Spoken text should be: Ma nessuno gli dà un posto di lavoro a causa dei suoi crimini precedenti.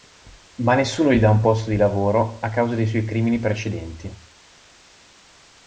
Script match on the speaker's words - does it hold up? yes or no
yes